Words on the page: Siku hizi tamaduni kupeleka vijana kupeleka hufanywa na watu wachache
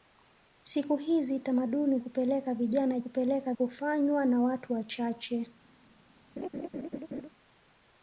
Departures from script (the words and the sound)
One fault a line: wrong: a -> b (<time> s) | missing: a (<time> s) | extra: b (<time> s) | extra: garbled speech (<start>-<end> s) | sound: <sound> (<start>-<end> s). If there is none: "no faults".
sound: laugh (6.4-7.3 s)